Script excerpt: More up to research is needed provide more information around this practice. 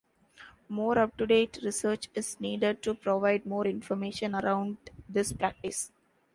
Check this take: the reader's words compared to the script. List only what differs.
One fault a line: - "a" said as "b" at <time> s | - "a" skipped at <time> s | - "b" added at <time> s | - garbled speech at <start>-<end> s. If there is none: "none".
- "date" added at 1.3 s
- "to" added at 2.8 s